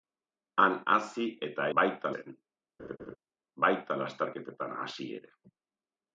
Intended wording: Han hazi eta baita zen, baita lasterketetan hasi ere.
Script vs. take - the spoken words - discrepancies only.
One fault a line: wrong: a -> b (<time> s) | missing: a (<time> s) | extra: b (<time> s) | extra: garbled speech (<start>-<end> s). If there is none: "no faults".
no faults